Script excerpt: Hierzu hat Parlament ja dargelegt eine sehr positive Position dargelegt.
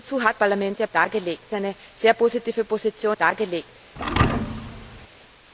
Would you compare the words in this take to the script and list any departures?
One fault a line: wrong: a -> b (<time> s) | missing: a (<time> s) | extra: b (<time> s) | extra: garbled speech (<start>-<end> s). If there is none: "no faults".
no faults